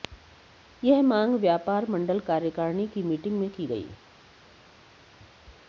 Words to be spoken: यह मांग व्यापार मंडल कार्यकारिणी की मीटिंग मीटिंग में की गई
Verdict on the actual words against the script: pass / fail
fail